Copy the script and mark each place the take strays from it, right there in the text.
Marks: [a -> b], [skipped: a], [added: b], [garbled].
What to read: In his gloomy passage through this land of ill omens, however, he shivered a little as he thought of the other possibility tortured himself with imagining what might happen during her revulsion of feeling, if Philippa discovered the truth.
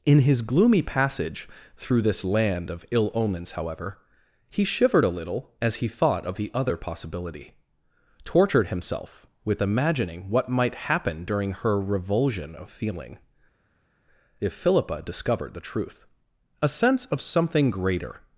In his gloomy passage through this land of ill omens, however, he shivered a little as he thought of the other possibility tortured himself with imagining what might happen during her revulsion of feeling, if Philippa discovered the truth. [added: A sense of something greater]